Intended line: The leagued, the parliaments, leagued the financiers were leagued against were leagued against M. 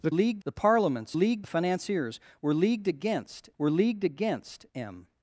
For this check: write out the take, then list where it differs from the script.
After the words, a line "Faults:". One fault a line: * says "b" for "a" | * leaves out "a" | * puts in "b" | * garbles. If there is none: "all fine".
The leagued, the parliaments, leagued the financiers were leagued against were leagued against M.
Faults:
all fine